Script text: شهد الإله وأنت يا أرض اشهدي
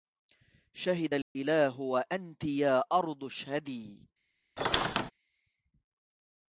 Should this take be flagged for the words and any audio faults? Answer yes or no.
yes